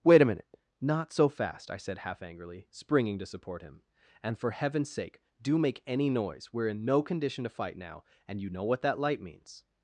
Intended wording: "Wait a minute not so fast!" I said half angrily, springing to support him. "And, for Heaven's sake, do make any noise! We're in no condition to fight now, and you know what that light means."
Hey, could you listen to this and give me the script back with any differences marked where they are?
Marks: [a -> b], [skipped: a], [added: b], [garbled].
"Wait a minute not so fast!" I said half angrily, springing to support him. "And, for Heaven's sake, do make any noise! We're in no condition to fight now, and you know what that light means."